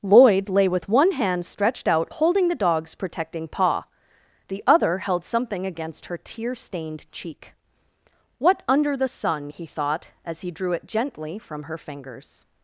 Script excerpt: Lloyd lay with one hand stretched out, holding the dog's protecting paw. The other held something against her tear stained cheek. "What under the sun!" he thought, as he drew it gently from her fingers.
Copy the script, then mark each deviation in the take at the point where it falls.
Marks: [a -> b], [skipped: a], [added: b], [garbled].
Lloyd lay with one hand stretched out, holding the dog's protecting paw. The other held something against her tear stained cheek. "What under the sun!" he thought, as he drew it gently from her fingers.